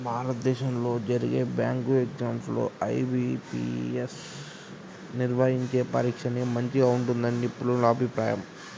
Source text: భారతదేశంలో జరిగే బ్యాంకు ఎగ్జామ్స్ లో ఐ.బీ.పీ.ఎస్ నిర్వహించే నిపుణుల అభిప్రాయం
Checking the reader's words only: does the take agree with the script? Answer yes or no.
no